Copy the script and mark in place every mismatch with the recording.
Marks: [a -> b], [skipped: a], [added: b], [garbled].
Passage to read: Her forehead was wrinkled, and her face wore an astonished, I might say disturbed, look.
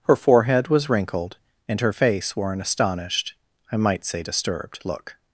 Her forehead was wrinkled, and her face wore an astonished, I might say disturbed, look.